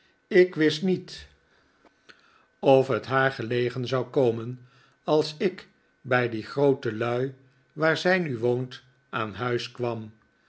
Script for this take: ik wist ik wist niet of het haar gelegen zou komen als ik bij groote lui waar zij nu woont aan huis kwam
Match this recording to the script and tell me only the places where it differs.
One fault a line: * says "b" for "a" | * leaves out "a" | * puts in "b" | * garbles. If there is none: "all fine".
* leaves out "ik wist"
* puts in "die"